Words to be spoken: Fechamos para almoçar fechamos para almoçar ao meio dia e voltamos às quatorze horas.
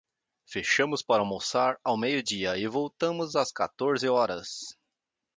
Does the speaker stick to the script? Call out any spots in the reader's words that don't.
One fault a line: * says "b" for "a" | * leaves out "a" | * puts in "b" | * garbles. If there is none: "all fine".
* leaves out "fechamos para almoçar"